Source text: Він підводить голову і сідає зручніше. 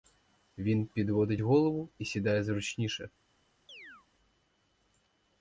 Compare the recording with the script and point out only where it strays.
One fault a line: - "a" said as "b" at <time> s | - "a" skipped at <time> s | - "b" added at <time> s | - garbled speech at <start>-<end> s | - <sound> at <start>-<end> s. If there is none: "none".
- chirp at 3.7-4.1 s